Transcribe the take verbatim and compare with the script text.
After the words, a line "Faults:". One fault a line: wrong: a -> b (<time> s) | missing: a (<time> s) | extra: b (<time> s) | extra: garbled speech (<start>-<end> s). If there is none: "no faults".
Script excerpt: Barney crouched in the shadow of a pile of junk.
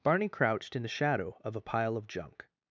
Barney crouched in the shadow of a pile of junk.
Faults:
no faults